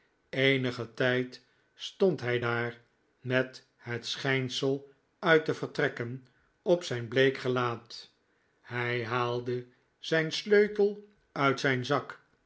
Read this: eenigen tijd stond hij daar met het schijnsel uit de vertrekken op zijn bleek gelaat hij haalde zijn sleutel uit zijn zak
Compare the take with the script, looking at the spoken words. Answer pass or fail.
pass